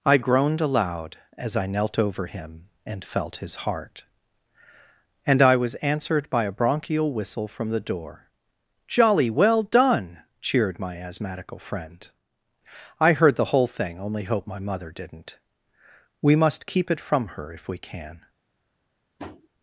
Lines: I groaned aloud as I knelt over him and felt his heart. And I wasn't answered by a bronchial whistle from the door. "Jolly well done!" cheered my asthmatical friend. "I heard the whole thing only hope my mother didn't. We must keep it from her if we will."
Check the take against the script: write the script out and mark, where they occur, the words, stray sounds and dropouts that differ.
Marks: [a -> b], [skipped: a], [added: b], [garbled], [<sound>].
I groaned aloud as I knelt over him and felt his heart. And I [wasn't -> was] answered by a bronchial whistle from the door. "Jolly well done!" cheered my asthmatical friend. "I heard the whole thing only hope my mother didn't. We must keep it from her if we [will." -> can] [tap]